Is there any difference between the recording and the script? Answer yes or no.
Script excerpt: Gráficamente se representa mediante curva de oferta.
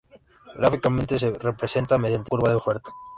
no